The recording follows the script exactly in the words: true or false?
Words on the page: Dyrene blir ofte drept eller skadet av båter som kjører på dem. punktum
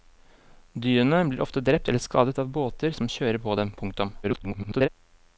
false